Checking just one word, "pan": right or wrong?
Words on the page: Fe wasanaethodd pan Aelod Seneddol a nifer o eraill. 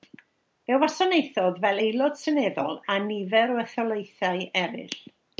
wrong